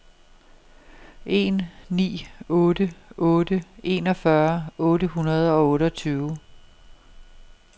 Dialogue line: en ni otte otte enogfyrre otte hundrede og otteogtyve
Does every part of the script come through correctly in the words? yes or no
yes